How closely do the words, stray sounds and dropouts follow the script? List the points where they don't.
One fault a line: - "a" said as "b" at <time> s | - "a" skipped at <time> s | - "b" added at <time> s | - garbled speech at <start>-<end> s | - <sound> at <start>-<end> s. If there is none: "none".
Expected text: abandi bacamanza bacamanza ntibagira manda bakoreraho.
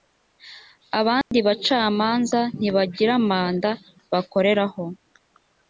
- dropout at 1.2-1.3 s
- "bacamanza" skipped at 2.4 s